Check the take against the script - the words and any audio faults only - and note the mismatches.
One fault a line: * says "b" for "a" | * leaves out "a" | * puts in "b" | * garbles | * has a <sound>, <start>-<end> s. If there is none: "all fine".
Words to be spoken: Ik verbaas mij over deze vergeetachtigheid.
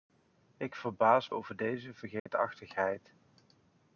* leaves out "mij"
* has a dropout, 2.2-2.3 s